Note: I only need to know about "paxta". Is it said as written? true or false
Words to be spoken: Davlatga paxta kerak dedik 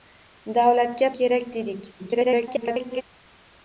false